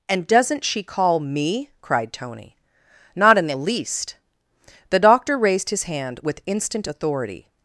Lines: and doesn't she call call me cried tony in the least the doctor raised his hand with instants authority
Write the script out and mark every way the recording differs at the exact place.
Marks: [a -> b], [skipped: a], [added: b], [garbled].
and doesn't she call [skipped: call] me cried tony [added: not] in the least the doctor raised his hand with [instants -> instant] authority